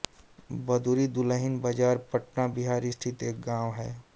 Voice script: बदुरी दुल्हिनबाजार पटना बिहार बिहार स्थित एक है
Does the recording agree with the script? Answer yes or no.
no